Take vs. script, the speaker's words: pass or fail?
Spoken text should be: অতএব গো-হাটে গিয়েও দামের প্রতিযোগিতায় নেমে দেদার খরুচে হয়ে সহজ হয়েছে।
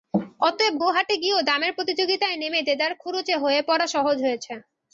fail